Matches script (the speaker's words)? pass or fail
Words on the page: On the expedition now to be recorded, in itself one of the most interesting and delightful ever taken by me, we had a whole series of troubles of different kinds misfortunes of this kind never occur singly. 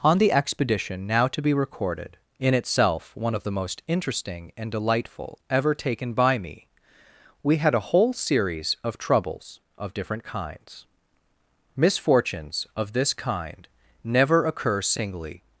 pass